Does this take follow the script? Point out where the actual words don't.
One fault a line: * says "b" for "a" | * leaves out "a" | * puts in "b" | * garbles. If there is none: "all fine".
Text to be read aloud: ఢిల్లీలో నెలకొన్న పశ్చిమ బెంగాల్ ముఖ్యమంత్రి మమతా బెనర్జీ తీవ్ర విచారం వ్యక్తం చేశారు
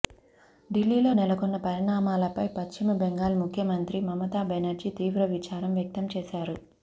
* puts in "పరిణామాలపై"